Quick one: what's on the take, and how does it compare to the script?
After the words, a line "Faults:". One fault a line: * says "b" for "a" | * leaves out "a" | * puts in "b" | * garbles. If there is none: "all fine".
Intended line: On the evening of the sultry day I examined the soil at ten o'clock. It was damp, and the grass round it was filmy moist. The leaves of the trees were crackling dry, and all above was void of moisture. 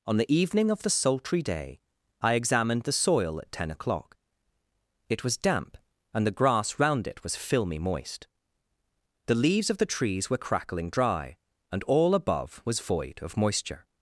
On the evening of the sultry day I examined the soil at ten o'clock. It was damp, and the grass round it was filmy moist. The leaves of the trees were crackling dry, and all above was void of moisture.
Faults:
all fine